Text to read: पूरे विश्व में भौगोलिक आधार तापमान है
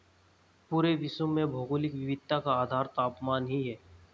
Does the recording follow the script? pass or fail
fail